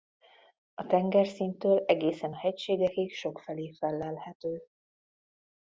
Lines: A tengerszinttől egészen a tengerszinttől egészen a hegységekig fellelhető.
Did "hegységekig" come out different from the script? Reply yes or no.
yes